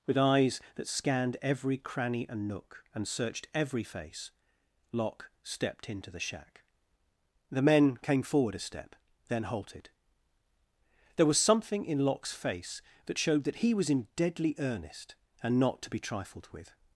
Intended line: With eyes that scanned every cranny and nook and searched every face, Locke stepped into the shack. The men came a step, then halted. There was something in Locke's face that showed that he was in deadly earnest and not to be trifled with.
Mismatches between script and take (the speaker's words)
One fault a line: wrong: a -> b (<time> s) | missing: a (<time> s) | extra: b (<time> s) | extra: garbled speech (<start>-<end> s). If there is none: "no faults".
extra: forward (8.2 s)